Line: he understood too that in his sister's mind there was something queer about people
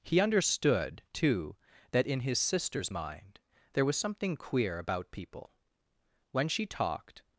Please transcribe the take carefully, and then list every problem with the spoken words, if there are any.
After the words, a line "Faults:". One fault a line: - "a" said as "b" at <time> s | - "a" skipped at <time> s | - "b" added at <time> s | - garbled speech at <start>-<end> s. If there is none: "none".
he understood too that in his sister's mind there was something queer about people when she talked
Faults:
- "when she talked" added at 6.3 s